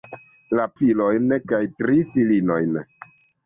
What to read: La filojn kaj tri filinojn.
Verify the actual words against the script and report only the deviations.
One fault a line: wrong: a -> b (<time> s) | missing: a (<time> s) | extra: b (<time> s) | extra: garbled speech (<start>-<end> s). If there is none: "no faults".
no faults